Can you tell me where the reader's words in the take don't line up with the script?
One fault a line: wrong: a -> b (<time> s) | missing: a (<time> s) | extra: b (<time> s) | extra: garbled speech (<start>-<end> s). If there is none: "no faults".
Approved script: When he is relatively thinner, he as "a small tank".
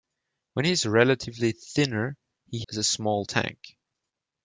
no faults